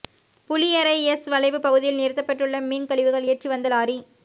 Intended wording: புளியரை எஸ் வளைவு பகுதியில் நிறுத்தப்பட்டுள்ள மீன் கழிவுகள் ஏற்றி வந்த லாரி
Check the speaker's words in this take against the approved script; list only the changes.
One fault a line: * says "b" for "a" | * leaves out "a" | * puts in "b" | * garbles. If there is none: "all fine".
all fine